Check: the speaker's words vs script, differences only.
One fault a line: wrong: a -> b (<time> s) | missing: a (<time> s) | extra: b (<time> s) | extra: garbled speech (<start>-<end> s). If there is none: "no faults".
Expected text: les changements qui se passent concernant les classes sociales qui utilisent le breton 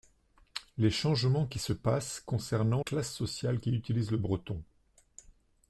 missing: les (2.8 s)